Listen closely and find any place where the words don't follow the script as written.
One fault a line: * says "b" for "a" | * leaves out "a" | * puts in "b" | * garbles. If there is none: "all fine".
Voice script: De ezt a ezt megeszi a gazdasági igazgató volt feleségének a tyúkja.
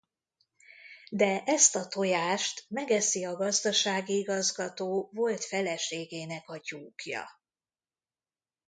* says "tojást" for "ezt"